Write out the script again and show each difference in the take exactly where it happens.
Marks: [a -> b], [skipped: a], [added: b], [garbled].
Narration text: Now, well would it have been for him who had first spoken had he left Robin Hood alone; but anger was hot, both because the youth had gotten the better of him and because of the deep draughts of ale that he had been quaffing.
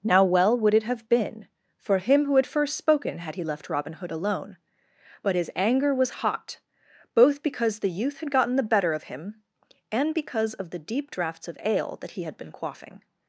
Now, well would it have been for him who had first spoken had he left Robin Hood alone; but [added: his] anger was hot, both because the youth had gotten the better of him and because of the deep draughts of ale that he had been quaffing.